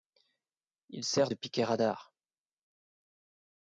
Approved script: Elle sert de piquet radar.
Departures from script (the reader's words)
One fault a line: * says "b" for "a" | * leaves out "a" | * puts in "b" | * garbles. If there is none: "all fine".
* says "Il" for "Elle"